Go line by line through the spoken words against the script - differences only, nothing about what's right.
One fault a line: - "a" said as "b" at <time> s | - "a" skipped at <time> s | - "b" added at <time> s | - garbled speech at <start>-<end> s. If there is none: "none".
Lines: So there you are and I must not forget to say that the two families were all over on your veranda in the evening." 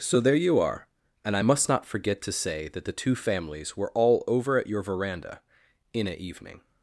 - "on" said as "at" at 4.6 s
- "the" said as "a" at 6.1 s